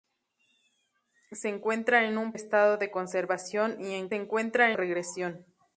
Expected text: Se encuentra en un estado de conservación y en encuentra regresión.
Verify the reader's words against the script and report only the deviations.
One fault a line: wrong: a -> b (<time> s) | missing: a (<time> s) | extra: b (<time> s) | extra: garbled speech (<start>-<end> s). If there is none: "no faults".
no faults